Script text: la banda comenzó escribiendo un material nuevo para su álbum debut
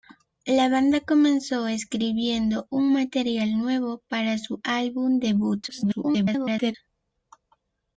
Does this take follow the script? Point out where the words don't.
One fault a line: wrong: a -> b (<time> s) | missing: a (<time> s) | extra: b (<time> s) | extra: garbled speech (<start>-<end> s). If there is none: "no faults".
extra: garbled speech (5.7-6.7 s)